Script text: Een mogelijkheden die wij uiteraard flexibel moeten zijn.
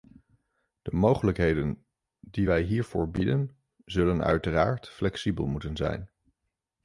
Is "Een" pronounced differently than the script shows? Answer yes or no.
yes